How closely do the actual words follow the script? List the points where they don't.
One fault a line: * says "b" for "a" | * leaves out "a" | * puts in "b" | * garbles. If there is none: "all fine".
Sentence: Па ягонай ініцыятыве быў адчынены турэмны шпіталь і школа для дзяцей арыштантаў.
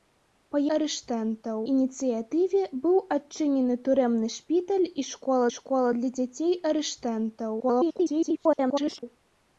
* says "арыштантаў" for "ягонай"
* puts in "школа"
* garbles